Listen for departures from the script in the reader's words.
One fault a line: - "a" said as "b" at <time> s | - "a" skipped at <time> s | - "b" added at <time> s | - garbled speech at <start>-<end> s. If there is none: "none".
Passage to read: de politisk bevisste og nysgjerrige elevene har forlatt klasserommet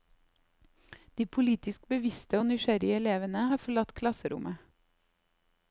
none